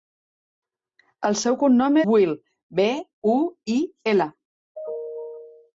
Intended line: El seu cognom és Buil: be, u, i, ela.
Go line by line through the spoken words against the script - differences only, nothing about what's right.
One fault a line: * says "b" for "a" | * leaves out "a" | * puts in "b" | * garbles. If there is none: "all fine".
* leaves out "és"